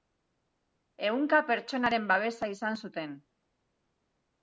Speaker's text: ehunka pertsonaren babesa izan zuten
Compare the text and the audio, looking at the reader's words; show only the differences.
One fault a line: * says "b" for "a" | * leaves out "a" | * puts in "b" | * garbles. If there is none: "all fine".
all fine